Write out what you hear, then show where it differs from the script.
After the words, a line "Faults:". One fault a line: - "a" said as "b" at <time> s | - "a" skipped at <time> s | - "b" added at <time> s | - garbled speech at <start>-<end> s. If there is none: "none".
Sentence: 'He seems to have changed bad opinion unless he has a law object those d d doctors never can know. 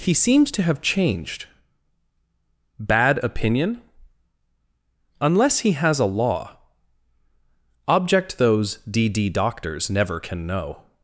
'He seems to have changed bad opinion unless he has a law object those d d doctors never can know.
Faults:
none